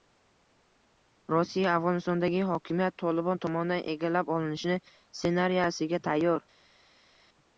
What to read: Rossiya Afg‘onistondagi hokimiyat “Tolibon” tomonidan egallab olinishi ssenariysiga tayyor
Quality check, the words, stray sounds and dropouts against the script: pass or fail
pass